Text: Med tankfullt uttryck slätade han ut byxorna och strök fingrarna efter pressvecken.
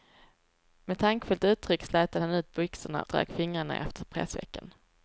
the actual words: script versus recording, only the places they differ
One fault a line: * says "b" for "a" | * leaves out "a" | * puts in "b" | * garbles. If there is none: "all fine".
* leaves out "och"